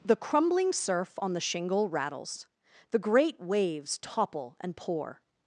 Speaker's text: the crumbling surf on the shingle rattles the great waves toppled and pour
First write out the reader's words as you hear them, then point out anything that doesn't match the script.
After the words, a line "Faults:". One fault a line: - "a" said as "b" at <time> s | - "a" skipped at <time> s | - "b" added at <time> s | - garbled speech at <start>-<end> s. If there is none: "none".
the crumbling surf on the shingle rattles the great waves topple and pour
Faults:
- "toppled" said as "topple" at 4.0 s